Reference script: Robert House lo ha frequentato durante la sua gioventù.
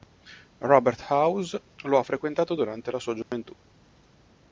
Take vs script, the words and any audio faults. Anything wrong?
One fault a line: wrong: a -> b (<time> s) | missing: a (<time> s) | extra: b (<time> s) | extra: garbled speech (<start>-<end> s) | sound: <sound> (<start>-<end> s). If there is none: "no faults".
sound: dropout (3.2-3.3 s)